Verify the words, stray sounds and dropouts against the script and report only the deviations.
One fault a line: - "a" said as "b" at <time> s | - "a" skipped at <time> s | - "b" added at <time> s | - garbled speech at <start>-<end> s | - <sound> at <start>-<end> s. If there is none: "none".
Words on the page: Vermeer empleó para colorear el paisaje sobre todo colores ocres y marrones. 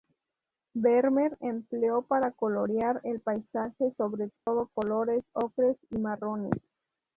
- dropout at 4.4-4.5 s